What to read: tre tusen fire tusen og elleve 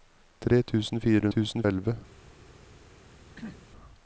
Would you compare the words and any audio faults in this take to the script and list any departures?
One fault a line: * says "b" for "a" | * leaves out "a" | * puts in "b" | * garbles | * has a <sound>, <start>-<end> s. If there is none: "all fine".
* has a throat clearing, 3.4-3.7 s